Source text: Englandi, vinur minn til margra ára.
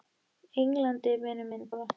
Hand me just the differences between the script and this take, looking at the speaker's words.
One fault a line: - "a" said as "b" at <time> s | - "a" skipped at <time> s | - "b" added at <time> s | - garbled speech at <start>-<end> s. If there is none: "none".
- "til margra" skipped at 1.7 s